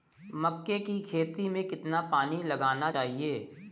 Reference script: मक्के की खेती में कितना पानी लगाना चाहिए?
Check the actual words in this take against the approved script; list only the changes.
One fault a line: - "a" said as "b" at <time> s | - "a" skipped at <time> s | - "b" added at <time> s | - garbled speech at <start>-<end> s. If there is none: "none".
none